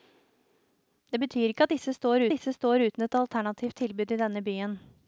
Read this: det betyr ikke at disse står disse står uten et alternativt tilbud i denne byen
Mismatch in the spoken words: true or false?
false